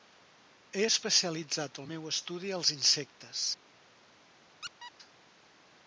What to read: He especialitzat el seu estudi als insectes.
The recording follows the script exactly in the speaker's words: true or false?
false